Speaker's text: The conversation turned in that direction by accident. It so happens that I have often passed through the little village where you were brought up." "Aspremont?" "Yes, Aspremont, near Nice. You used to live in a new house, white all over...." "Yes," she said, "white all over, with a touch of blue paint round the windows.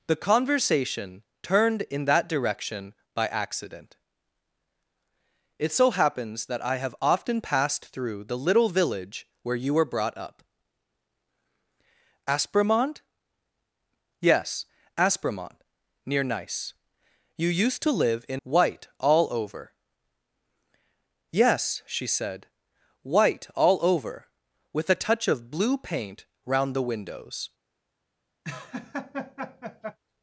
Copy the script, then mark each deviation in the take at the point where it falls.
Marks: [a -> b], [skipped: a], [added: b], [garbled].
The conversation turned in that direction by accident. It so happens that I have often passed through the little village where you were brought up." "Aspremont?" "Yes, Aspremont, near Nice. You used to live in [skipped: a new house,] white all over...." "Yes," she said, "white all over, with a touch of blue paint round the windows.